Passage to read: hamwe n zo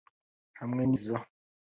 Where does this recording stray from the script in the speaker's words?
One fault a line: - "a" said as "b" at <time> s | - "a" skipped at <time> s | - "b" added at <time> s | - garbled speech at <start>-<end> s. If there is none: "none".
none